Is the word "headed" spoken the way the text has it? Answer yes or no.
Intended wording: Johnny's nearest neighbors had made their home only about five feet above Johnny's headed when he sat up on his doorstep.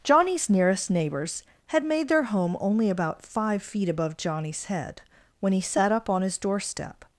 no